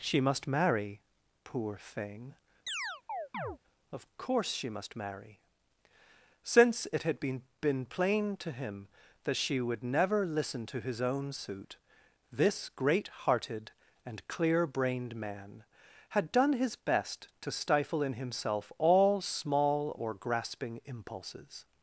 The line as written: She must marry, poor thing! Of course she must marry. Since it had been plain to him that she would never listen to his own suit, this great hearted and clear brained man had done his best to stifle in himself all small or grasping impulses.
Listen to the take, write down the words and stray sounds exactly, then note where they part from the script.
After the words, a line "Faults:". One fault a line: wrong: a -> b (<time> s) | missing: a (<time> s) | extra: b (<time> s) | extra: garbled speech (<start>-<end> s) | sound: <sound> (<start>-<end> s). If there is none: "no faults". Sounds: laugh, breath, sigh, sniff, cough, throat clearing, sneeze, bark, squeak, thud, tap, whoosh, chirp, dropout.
She must marry, poor thing! Of course she must marry. Since it had been been plain to him that she would never listen to his own suit, this great hearted and clear brained man had done his best to stifle in himself all small or grasping impulses.
Faults:
sound: chirp (2.7-3.6 s)
extra: been (7.6 s)